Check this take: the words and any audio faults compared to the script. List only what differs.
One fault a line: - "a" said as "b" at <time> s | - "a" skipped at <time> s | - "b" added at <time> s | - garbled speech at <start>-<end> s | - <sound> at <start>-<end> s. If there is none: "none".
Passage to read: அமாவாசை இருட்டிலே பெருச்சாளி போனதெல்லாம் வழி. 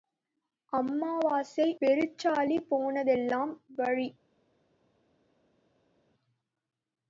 - "இருட்டிலே" skipped at 1.7 s